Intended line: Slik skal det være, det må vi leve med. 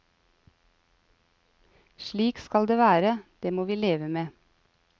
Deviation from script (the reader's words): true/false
false